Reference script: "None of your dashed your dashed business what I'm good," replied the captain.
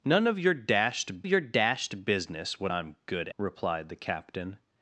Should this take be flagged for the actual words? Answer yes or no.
no